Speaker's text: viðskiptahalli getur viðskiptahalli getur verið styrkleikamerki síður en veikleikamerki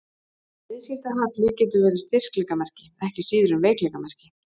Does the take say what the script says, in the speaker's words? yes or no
no